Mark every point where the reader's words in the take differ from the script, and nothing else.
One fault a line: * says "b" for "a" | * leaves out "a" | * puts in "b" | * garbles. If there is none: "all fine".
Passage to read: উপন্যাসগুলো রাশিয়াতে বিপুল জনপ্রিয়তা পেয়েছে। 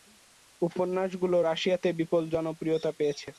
all fine